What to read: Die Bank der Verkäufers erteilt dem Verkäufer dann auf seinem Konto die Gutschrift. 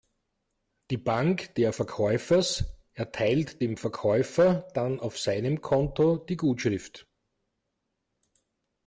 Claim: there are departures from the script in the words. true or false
false